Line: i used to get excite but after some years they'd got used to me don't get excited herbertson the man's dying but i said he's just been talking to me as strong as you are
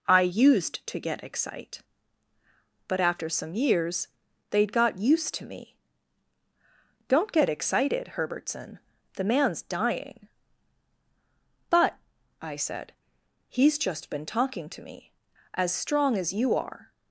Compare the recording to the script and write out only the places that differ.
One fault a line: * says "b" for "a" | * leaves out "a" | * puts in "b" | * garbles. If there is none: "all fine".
all fine